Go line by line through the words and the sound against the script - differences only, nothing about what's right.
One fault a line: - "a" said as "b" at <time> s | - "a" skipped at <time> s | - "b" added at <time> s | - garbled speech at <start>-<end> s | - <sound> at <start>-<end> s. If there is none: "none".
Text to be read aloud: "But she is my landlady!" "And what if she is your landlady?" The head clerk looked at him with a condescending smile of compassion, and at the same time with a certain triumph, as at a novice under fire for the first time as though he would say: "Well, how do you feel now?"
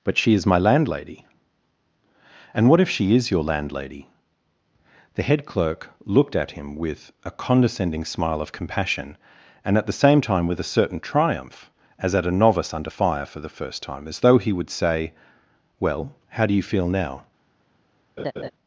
- laugh at 18.2-18.5 s